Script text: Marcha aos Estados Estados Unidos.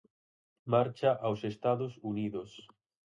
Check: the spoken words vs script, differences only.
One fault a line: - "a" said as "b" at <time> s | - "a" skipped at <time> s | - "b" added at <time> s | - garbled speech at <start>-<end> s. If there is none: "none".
- "Estados" skipped at 2.0 s